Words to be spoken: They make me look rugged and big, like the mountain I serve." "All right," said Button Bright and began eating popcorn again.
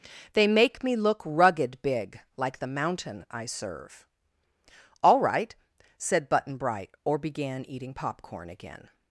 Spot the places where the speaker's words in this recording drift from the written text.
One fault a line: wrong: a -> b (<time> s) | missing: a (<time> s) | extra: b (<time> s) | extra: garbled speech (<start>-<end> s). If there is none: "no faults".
missing: and (1.8 s)
wrong: and -> or (7.0 s)